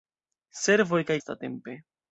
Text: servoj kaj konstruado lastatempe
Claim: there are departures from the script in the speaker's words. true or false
true